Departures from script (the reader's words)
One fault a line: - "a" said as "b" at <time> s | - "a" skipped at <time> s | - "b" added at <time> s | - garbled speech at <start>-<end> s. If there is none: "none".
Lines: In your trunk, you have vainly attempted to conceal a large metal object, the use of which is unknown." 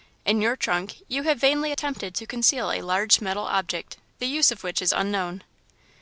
none